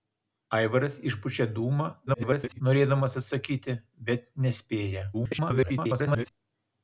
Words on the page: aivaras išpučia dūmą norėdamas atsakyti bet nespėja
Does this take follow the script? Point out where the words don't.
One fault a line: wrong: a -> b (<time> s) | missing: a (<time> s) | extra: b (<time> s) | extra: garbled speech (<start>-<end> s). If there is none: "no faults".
extra: garbled speech (2.1-2.6 s)
extra: garbled speech (5.1-6.3 s)